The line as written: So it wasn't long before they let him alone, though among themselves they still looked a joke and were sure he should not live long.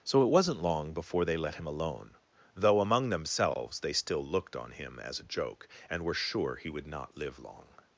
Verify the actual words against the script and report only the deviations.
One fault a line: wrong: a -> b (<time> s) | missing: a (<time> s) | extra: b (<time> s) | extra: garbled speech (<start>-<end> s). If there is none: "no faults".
extra: on him as (4.5 s)
wrong: should -> would (6.7 s)